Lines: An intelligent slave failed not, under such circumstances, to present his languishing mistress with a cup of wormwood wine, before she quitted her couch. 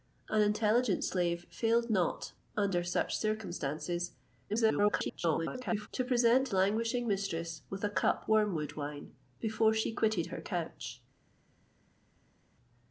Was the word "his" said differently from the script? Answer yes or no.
yes